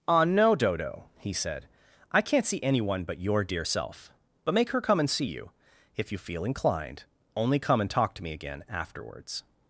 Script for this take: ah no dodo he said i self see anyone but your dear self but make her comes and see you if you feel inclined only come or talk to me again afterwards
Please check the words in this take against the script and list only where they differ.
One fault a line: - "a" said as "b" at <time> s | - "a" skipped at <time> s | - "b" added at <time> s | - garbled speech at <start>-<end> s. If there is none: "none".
- "self" said as "can't" at 2.2 s
- "comes" said as "come" at 4.8 s
- "or" said as "and" at 7.8 s